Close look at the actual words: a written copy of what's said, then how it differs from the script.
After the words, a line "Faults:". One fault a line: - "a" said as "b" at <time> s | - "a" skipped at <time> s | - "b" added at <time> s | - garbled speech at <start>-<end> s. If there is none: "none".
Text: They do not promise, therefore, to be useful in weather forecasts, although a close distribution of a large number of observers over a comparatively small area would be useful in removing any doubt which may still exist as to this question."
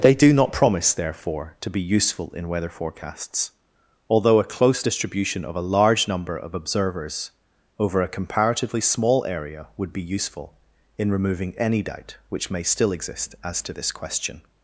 They do not promise, therefore, to be useful in weather forecasts, although a close distribution of a large number of observers over a comparatively small area would be useful in removing any doubt which may still exist as to this question."
Faults:
none